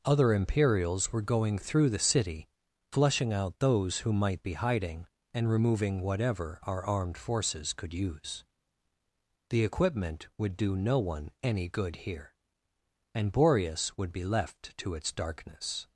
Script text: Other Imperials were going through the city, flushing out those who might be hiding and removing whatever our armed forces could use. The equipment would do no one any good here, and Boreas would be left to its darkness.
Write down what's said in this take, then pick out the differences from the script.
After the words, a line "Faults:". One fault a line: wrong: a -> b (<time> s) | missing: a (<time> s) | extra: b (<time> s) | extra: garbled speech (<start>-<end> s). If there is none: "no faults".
Other Imperials were going through the city, flushing out those who might be hiding and removing whatever our armed forces could use. The equipment would do no one any good here, and Boreas would be left to its darkness.
Faults:
no faults